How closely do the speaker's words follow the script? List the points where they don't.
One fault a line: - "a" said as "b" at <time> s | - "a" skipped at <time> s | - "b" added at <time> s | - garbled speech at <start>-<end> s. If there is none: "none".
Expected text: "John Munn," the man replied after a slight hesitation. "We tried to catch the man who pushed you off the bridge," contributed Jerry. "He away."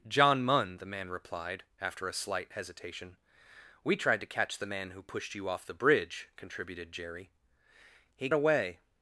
none